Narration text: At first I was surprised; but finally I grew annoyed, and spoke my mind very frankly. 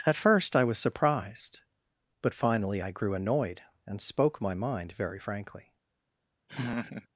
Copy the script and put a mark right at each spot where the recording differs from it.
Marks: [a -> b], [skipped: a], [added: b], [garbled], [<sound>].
At first I was surprised; but finally I grew annoyed, and spoke my mind very frankly. [laugh]